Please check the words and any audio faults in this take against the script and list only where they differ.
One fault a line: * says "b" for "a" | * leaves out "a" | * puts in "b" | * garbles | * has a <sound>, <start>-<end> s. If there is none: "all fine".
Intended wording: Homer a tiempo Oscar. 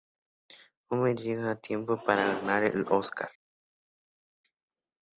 * puts in "llega"
* puts in "para ganar el"